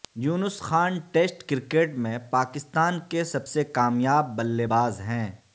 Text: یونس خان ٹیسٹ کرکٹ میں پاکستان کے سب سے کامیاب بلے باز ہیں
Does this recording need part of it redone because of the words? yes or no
no